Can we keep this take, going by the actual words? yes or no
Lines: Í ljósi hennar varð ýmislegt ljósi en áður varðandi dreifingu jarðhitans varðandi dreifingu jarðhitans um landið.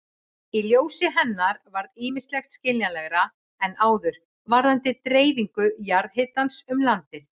no